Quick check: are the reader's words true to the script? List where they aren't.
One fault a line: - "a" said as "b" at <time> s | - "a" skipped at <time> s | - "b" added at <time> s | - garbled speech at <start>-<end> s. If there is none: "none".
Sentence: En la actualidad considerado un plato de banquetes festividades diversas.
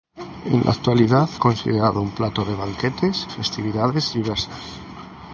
none